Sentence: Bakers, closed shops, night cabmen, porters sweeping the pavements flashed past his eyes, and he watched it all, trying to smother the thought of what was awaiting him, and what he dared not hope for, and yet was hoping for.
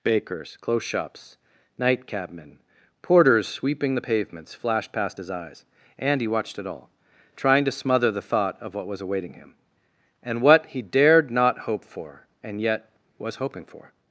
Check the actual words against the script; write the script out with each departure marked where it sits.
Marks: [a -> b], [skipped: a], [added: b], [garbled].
Bakers, [closed -> close] shops, night cabmen, porters sweeping the pavements flashed past his eyes, and he watched it all, trying to smother the thought of what was awaiting him, and what he dared not hope for, and yet was hoping for.